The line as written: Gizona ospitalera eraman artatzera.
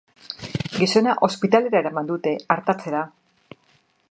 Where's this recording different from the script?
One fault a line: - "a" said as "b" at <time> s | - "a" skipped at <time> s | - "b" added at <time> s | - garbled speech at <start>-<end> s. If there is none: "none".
- "dute" added at 2.1 s